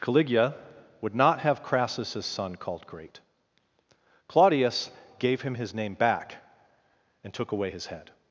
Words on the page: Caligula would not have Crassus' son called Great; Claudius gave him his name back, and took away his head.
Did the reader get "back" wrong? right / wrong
right